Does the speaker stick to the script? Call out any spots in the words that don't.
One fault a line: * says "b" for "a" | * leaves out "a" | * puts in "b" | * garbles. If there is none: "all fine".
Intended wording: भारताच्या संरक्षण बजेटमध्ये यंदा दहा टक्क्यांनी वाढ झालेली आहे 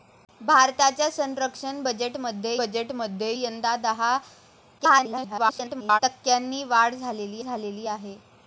* puts in "बजेटमध्ये"
* garbles
* puts in "झालेली"